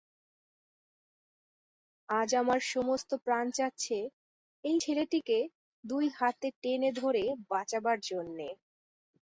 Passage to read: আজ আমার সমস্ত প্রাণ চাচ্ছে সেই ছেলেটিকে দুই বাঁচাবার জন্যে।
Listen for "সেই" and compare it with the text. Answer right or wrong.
wrong